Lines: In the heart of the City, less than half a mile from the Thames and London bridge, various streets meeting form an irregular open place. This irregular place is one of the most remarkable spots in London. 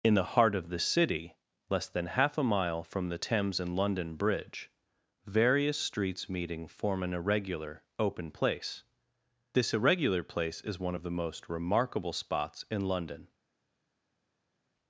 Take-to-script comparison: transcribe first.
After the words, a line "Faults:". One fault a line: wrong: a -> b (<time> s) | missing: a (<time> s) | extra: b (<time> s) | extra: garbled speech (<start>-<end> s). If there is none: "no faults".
In the heart of the City, less than half a mile from the Thames and London bridge, various streets meeting form an irregular open place. This irregular place is one of the most remarkable spots in London.
Faults:
no faults